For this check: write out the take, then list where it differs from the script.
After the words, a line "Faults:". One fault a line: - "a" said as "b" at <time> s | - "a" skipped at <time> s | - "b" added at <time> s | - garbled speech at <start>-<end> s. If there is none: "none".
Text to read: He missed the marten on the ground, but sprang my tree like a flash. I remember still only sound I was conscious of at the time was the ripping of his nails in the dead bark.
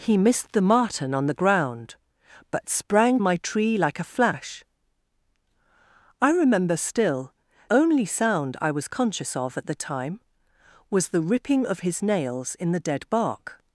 He missed the marten on the ground, but sprang my tree like a flash. I remember still only sound I was conscious of at the time was the ripping of his nails in the dead bark.
Faults:
none